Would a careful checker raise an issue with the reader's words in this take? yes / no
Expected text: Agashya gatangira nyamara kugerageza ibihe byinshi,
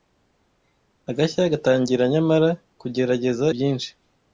yes